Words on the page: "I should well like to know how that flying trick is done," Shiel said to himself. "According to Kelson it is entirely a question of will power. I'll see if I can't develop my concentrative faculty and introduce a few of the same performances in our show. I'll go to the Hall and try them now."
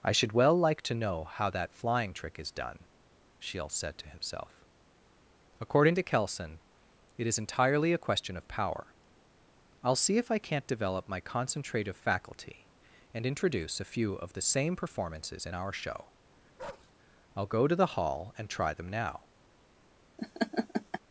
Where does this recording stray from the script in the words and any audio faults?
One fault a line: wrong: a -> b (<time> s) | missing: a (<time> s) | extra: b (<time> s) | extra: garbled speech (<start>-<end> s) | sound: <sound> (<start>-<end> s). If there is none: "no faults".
missing: will (8.5 s)
sound: bark (16.6-16.9 s)
sound: laugh (20.2-21.0 s)